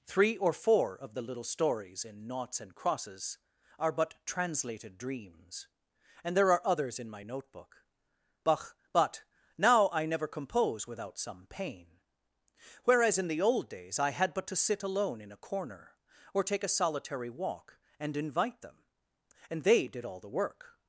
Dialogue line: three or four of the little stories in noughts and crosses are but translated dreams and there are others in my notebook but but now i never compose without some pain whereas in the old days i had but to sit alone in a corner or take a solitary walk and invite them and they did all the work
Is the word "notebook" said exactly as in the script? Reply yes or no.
yes